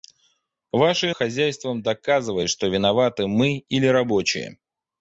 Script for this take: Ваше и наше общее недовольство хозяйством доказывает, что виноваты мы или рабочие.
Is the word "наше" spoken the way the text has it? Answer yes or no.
no